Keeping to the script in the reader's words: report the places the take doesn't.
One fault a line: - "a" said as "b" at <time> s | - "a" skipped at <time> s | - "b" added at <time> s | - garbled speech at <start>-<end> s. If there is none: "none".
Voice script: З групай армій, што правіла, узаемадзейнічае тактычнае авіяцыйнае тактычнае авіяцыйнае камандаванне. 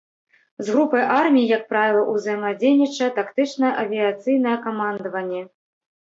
- "што" said as "як" at 1.5 s
- "тактычнае авіяцыйнае" skipped at 4.5 s